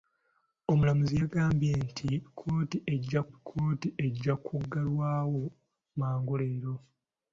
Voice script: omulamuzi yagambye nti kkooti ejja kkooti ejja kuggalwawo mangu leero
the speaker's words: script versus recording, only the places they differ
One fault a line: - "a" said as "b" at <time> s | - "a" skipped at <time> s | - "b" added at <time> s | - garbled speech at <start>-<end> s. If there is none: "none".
none